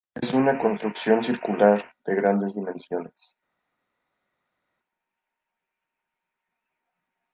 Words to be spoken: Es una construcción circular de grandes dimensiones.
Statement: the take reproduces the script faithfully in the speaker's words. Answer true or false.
true